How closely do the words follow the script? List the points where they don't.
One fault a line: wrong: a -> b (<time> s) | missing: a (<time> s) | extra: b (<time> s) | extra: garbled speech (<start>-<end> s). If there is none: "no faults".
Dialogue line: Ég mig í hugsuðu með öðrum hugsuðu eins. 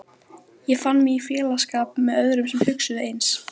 extra: fann (0.8 s)
wrong: hugsuðu -> félagsskap (1.3 s)
extra: sem (2.5 s)